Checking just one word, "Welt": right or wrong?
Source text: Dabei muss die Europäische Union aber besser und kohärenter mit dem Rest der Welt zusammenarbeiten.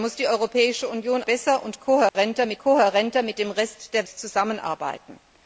wrong